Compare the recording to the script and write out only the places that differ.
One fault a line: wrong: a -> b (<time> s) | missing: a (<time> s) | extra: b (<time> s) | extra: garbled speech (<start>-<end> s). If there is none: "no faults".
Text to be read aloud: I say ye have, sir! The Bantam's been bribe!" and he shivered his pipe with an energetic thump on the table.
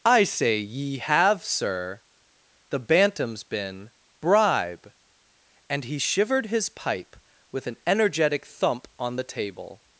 no faults